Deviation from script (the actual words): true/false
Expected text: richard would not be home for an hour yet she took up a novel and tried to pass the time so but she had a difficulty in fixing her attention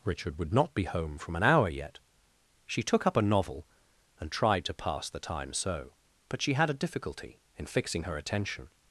true